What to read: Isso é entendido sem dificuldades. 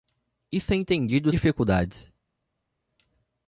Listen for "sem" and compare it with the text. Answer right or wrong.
wrong